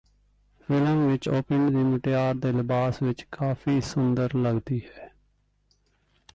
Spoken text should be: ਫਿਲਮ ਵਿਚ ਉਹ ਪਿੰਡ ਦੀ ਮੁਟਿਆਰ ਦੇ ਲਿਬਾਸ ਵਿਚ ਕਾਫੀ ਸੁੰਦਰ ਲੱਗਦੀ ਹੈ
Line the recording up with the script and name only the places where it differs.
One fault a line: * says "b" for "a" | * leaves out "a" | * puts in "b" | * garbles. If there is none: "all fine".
all fine